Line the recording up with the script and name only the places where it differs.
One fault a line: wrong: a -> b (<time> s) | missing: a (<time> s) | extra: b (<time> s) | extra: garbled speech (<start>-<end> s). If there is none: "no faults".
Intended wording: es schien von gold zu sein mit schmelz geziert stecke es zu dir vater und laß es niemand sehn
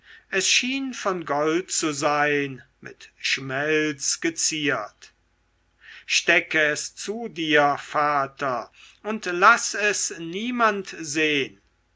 no faults